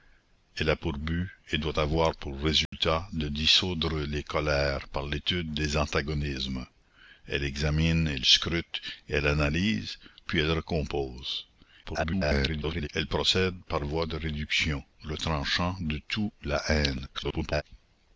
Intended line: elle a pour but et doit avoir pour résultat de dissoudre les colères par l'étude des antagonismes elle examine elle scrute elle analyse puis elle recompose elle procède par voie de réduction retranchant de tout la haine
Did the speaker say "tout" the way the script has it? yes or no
yes